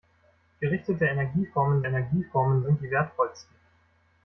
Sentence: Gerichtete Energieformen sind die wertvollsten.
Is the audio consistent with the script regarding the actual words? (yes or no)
no